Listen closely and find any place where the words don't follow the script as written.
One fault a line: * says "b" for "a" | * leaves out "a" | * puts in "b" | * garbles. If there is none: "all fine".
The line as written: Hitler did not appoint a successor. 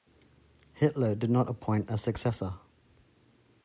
all fine